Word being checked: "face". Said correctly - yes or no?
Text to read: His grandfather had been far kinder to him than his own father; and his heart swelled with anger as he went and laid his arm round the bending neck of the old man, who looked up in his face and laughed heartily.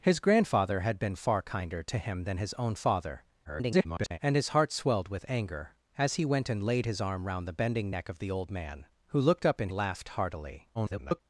no